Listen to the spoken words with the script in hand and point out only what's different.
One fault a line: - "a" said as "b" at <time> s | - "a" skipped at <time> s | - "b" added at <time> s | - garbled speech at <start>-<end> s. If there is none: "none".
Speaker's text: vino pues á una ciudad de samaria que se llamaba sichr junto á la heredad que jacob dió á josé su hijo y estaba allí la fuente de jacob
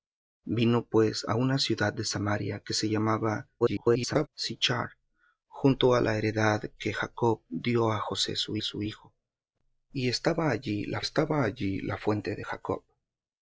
- garbled speech at 3.6-4.3 s
- "su" added at 8.6 s
- "estaba allí la" added at 11.0 s